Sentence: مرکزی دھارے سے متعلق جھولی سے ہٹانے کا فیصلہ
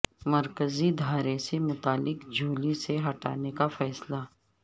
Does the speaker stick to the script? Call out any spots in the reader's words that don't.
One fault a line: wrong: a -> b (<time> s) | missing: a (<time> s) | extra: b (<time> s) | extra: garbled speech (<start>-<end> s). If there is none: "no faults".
no faults